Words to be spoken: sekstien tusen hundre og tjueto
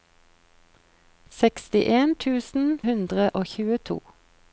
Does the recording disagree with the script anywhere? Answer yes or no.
no